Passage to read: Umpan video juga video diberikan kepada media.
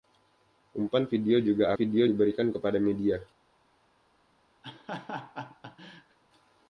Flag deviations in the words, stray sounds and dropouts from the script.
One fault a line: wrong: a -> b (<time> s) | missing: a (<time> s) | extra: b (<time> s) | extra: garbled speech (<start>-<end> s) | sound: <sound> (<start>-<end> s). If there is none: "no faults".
sound: laugh (4.6-6.2 s)